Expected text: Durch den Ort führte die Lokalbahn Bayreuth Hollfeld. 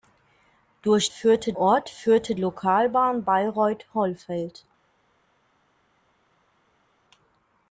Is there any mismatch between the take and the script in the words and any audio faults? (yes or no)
yes